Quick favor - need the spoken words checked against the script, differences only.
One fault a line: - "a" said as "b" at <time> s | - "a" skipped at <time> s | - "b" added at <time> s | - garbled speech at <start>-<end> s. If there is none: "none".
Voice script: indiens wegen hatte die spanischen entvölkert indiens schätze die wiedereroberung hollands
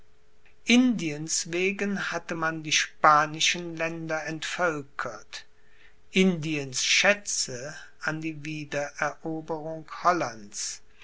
- "man" added at 2.3 s
- "länder" added at 3.7 s
- "an" added at 8.0 s